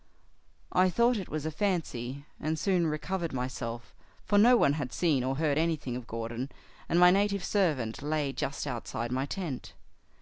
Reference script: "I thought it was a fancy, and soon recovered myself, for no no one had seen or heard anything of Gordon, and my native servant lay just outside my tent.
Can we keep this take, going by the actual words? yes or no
no